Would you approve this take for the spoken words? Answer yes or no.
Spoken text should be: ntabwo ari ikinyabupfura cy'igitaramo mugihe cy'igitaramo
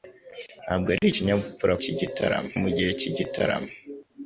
yes